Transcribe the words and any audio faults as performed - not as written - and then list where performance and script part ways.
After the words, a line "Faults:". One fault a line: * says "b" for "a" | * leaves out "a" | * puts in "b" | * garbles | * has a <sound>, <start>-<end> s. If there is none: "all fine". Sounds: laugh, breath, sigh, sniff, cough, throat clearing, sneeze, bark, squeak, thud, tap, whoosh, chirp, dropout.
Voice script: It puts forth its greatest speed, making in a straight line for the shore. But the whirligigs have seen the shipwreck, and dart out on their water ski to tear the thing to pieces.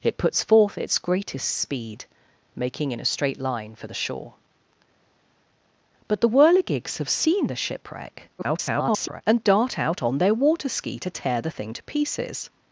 It puts forth its greatest speed, making in a straight line for the shore. But the whirligigs have seen the shipwreck, [garbled] and dart out on their water ski to tear the thing to pieces.
Faults:
* garbles